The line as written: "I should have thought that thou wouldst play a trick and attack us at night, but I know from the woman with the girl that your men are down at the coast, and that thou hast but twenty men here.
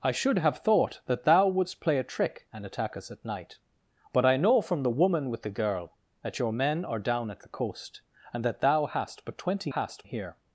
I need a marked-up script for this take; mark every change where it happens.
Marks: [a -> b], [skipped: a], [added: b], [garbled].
"I should have thought that thou wouldst play a trick and attack us at night, but I know from the woman with the girl that your men are down at the coast, and that thou hast but twenty [men -> hast] here.